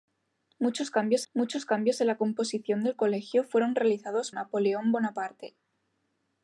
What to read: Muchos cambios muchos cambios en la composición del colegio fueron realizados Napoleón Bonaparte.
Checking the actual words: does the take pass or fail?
pass